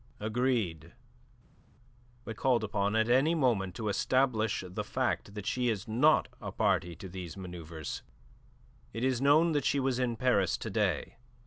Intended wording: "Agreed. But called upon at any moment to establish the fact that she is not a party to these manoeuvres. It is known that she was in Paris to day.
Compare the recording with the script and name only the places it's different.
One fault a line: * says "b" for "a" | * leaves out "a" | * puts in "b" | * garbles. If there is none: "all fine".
all fine